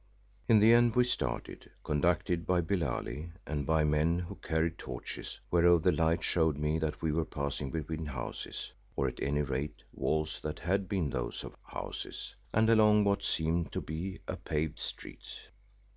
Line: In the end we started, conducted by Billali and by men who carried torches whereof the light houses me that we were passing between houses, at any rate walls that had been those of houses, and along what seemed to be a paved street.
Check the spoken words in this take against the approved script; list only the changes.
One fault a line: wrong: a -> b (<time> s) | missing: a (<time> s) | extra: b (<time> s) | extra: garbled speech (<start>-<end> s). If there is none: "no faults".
wrong: houses -> showed (6.2 s)
extra: or (9.0 s)